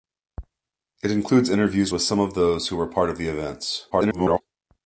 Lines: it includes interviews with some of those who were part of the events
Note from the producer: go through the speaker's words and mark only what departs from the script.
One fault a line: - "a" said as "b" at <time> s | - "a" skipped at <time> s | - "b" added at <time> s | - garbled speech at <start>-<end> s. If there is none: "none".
- garbled speech at 3.9-4.4 s